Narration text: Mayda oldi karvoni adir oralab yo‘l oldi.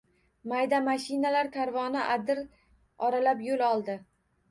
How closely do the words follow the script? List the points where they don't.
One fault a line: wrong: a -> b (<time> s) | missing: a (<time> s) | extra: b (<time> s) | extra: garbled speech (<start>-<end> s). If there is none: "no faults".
wrong: oldi -> mashinalar (0.8 s)